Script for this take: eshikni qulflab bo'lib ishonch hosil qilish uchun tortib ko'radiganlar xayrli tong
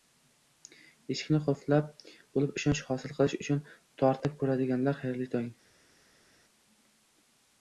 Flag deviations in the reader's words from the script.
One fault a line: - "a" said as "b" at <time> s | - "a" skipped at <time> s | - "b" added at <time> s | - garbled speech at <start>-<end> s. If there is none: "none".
none